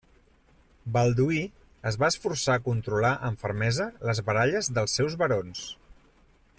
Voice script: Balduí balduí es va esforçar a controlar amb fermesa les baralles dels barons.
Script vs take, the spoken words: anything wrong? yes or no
yes